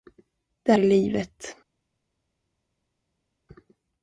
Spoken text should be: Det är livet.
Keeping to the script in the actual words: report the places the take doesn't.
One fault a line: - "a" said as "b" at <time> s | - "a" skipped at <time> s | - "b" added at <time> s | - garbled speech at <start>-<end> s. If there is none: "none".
none